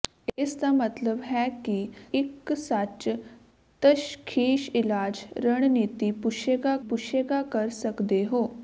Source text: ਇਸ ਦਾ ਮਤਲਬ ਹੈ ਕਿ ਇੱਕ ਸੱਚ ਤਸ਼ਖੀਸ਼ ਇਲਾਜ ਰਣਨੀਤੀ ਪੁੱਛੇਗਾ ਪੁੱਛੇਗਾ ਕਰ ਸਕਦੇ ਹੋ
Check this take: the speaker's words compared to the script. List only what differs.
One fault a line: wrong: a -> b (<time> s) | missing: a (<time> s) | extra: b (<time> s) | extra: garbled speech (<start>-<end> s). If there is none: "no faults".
no faults